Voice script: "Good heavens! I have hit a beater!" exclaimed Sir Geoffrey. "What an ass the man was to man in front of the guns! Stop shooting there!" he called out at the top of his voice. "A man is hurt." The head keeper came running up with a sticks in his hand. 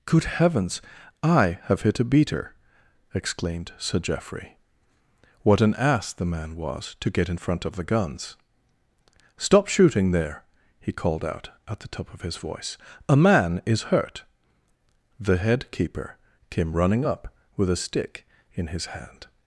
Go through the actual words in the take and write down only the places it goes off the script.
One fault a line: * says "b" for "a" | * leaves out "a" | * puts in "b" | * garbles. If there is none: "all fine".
* says "get" for "man"
* says "stick" for "sticks"